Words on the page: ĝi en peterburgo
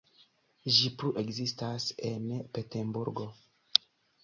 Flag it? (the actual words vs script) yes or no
yes